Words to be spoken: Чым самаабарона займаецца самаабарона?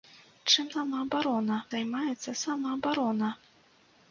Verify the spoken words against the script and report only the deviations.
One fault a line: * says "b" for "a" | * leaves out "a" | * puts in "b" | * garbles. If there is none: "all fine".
all fine